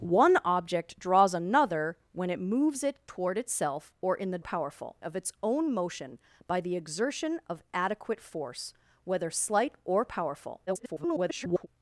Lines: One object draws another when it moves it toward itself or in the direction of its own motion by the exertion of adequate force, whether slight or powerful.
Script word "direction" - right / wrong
wrong